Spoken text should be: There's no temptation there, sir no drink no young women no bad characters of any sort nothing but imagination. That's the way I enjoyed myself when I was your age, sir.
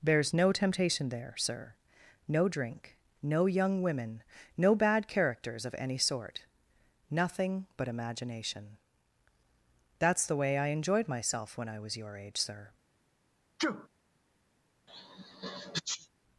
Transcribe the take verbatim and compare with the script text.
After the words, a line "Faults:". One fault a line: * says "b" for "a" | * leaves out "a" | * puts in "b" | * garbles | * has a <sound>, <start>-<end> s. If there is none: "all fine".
There's no temptation there, sir no drink no young women no bad characters of any sort nothing but imagination. That's the way I enjoyed myself when I was your age, sir.
Faults:
* has a sneeze, 13.6-13.9 s
* has a sneeze, 14.9-16.1 s